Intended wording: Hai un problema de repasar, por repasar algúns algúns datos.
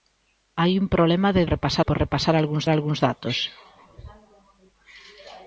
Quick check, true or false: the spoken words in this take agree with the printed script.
true